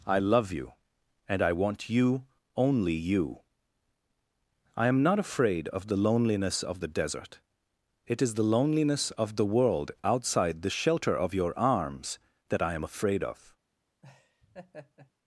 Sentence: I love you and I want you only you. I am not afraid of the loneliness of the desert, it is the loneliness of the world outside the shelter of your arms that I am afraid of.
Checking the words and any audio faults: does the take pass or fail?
fail